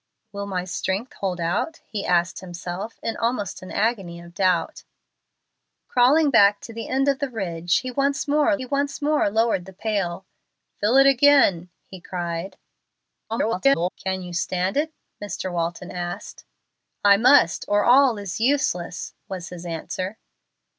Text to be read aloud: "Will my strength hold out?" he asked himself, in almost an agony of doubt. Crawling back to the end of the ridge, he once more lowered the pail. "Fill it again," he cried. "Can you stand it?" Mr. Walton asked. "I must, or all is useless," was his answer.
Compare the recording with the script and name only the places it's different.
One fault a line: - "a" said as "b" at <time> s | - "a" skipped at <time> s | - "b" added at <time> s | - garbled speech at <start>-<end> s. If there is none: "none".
- "he once more" added at 8.6 s
- garbled speech at 13.3-13.9 s